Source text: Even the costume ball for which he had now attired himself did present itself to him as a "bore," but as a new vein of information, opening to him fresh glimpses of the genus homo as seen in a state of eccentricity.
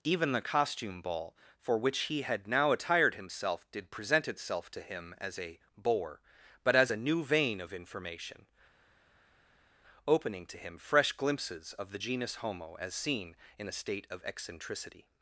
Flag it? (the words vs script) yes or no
no